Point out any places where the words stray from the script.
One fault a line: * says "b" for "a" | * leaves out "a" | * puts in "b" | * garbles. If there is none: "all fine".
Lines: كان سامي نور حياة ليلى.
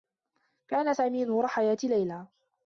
all fine